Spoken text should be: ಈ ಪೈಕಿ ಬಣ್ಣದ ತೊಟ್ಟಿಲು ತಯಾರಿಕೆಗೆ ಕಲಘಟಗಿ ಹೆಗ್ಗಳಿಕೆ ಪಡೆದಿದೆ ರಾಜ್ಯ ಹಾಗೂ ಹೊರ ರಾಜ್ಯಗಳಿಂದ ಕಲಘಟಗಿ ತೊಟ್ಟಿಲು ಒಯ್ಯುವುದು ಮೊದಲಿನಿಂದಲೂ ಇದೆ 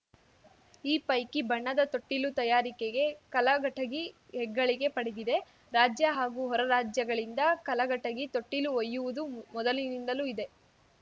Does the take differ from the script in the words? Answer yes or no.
no